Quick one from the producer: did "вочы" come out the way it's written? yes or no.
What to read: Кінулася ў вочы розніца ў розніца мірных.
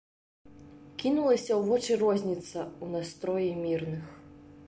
yes